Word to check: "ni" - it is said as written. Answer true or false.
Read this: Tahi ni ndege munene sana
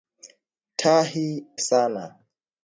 false